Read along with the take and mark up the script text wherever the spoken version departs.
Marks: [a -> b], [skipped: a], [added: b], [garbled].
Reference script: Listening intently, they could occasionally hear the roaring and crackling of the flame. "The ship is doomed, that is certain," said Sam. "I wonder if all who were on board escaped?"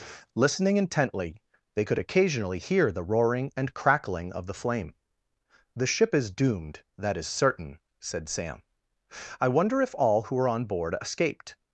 Listening intently, they could occasionally hear the roaring and crackling of the flame. "The ship is doomed, that is certain," said Sam. "I wonder if all who were on board escaped?"